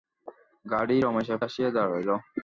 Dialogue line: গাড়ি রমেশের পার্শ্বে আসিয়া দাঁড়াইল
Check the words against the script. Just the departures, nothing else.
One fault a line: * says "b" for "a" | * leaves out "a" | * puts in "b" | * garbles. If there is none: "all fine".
* leaves out "পার্শ্বে"